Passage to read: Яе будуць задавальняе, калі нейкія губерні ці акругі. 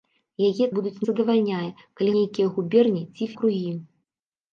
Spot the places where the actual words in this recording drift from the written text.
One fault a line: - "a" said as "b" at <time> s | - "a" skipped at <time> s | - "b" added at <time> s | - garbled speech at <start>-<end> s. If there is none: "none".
none